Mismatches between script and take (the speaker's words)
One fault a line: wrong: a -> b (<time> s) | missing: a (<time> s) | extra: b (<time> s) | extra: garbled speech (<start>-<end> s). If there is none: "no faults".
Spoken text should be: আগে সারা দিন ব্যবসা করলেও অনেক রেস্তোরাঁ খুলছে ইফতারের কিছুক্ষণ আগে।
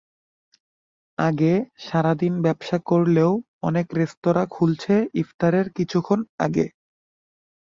no faults